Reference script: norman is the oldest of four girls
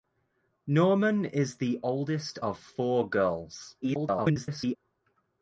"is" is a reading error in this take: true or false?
false